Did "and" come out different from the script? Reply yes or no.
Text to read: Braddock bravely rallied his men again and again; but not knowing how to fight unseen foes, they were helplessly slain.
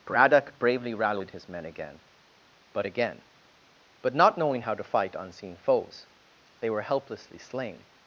yes